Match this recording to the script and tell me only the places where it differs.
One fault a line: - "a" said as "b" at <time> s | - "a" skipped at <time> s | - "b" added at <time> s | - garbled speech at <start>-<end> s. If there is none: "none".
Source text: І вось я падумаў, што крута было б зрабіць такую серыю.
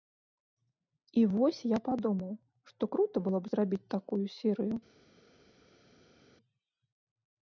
none